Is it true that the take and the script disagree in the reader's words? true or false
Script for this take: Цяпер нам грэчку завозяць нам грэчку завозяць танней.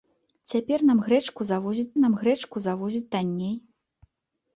false